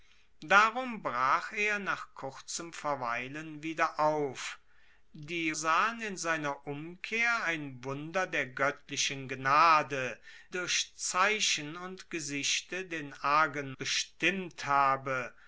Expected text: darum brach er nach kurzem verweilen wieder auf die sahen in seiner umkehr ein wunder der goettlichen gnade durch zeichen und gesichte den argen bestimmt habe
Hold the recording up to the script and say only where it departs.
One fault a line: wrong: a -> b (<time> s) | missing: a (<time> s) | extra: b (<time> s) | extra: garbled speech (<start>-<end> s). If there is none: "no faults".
no faults